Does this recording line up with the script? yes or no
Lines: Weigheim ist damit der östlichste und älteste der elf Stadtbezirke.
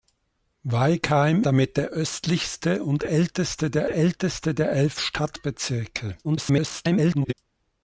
no